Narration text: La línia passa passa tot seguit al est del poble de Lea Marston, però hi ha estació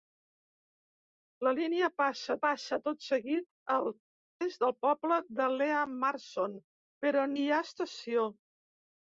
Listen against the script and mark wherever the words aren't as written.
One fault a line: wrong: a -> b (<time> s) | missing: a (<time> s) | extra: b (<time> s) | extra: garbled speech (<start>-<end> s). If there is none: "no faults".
no faults